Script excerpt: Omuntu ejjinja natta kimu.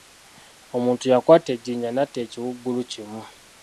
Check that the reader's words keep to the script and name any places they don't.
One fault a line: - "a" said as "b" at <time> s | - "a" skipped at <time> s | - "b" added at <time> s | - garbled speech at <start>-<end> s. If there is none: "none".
- "yakwata" added at 1.1 s
- "ekiwuugulu" added at 2.2 s